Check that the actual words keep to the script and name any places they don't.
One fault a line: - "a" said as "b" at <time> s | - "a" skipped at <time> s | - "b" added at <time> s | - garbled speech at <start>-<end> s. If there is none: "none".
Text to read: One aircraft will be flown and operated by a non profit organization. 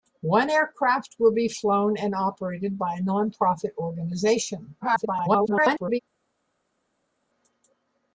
- garbled speech at 4.8-6.0 s